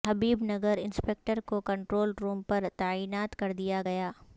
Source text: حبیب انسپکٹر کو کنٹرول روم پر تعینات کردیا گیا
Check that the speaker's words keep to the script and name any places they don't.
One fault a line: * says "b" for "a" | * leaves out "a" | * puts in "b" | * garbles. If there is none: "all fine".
* puts in "نگر"